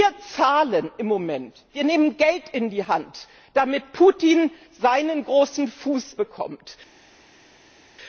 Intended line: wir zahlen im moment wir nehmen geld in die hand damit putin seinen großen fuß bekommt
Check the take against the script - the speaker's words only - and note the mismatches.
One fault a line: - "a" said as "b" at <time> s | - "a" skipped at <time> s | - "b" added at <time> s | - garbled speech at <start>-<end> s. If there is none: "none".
none